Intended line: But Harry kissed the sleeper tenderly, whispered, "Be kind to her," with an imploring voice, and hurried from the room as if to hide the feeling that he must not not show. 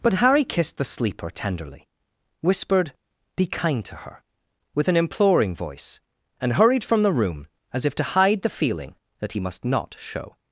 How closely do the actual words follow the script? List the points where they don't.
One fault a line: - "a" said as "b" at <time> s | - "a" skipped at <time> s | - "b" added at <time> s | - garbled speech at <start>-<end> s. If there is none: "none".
- "not" skipped at 10.0 s